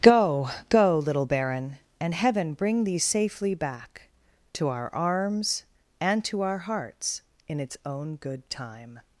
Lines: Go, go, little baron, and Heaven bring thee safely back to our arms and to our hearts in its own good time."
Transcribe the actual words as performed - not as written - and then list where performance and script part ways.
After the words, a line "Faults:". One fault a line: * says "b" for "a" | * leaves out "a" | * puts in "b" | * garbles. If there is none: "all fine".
Go, go, little baron, and Heaven bring thee safely back to our arms and to our hearts in its own good time."
Faults:
all fine